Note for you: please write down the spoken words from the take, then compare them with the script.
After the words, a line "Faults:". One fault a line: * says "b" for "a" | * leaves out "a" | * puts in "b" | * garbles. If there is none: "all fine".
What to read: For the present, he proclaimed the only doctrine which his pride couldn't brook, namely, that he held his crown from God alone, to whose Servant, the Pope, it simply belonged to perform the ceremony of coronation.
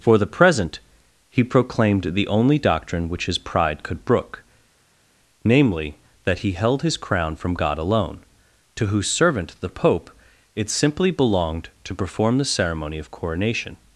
For the present, he proclaimed the only doctrine which his pride could brook, namely, that he held his crown from God alone, to whose Servant, the Pope, it simply belonged to perform the ceremony of coronation.
Faults:
* says "could" for "couldn't"